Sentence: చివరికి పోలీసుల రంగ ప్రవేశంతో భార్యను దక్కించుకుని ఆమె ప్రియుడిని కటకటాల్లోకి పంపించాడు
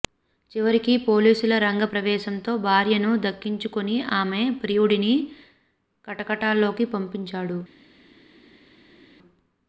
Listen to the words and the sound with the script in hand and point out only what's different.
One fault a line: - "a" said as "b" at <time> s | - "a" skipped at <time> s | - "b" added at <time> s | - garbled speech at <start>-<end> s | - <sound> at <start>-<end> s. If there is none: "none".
none